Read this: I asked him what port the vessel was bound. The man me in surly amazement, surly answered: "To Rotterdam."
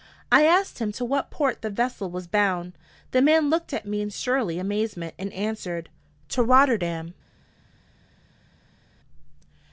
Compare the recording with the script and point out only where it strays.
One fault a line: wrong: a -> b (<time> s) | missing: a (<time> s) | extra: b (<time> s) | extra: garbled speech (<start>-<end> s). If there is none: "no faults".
extra: to (0.9 s)
extra: looked at (3.5 s)
wrong: surly -> and (5.2 s)